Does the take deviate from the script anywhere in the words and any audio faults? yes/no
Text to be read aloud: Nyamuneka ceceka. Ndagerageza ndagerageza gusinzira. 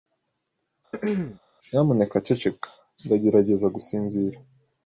yes